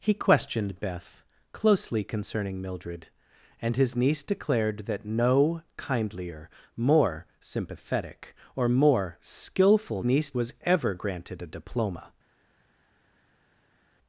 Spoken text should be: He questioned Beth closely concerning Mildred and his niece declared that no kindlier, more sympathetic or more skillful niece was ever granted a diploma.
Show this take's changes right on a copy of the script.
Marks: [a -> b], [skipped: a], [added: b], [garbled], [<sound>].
He questioned Beth closely concerning Mildred and his niece declared that no kindlier, more sympathetic or more skillful niece was ever granted a diploma.